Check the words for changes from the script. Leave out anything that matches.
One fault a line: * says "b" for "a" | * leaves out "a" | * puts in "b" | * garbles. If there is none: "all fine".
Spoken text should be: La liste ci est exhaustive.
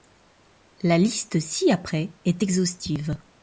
* puts in "après"